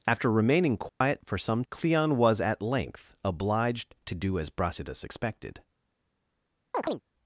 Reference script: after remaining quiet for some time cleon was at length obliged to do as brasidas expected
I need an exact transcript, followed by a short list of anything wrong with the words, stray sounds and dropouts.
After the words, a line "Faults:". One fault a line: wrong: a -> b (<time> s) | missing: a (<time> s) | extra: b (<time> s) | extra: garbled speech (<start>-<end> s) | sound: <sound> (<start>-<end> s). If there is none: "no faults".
after remaining quiet for some cleon was at length obliged to do as brasidas expected
Faults:
sound: dropout (0.9-1.0 s)
missing: time (1.6 s)
sound: chirp (6.7-7.0 s)